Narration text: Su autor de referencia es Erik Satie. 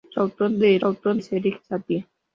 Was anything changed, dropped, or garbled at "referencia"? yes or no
yes